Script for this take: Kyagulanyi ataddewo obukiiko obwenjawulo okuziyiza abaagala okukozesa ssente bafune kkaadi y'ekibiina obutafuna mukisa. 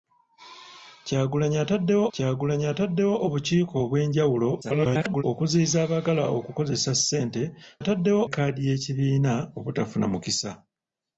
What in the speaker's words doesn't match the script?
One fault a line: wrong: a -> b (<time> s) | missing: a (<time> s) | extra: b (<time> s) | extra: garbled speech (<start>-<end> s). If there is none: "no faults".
extra: kyagulanyi ataddewo (2.1 s)
extra: garbled speech (4.6-5.2 s)
wrong: bafune -> ataddewo (7.8 s)